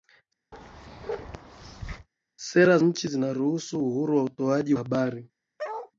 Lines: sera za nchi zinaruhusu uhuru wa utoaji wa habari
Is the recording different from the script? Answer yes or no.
yes